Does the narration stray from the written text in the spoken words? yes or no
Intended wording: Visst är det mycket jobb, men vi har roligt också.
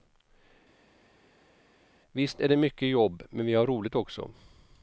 no